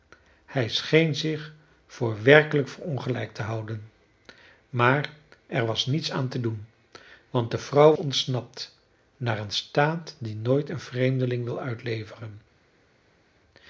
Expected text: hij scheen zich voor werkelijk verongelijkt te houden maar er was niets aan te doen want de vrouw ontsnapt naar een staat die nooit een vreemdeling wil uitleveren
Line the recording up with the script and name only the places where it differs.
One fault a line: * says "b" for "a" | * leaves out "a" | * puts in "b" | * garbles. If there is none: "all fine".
all fine